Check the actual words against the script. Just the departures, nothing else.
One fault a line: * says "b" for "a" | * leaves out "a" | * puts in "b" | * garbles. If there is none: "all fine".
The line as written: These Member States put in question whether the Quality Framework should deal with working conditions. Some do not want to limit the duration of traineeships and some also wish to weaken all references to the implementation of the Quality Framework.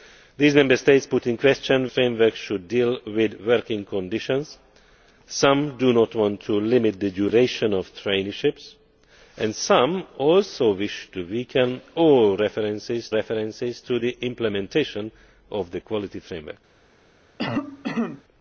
* leaves out "whether the Quality"
* puts in "references"